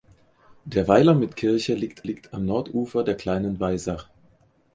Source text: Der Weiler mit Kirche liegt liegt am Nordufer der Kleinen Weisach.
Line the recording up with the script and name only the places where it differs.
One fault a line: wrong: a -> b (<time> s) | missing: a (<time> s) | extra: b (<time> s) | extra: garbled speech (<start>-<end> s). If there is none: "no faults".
no faults